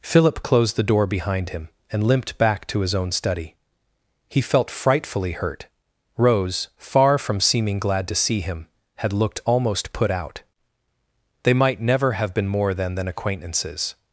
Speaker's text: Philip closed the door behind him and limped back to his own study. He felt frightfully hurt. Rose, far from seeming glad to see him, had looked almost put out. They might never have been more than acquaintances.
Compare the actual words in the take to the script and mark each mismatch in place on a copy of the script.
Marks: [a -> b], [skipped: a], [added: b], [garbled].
Philip closed the door behind him and limped back to his own study. He felt frightfully hurt. Rose, far from seeming glad to see him, had looked almost put out. They might never have been more than [added: than] acquaintances.